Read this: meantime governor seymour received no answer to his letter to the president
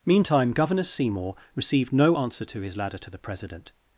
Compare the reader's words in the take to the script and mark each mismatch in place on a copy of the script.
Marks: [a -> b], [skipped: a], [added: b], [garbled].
meantime governor seymour received no answer to his [letter -> ladder] to the president